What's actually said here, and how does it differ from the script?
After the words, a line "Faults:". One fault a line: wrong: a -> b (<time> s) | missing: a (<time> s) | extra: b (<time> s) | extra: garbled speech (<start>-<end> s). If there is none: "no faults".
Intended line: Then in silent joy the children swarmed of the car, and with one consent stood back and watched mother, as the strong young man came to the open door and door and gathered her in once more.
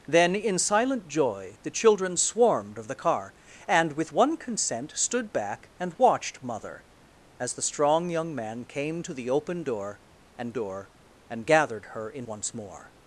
Then in silent joy the children swarmed of the car, and with one consent stood back and watched mother, as the strong young man came to the open door and door and gathered her in once more.
Faults:
no faults